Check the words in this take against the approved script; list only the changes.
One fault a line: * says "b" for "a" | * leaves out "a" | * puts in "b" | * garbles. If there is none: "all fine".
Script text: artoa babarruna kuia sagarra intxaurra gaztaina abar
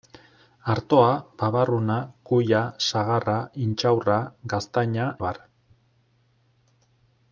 all fine